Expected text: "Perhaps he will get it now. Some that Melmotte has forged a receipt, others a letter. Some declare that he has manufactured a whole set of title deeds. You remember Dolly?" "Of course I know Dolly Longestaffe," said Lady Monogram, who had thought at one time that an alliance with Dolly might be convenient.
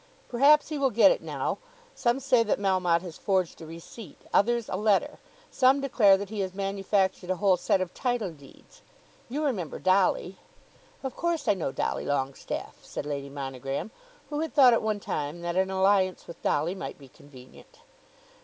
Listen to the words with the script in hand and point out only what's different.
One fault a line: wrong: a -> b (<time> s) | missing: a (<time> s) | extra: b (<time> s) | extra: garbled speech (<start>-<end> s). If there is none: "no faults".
extra: say (2.2 s)